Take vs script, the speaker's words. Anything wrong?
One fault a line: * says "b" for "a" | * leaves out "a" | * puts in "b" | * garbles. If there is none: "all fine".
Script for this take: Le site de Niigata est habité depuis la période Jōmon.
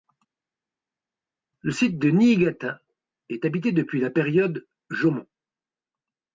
all fine